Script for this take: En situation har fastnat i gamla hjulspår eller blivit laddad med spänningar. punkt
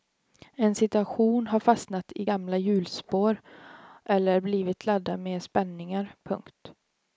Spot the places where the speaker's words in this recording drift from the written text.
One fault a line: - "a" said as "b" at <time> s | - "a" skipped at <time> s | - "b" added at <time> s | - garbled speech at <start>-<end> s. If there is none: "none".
none